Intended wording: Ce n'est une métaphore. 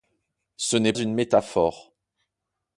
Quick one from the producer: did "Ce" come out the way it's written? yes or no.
yes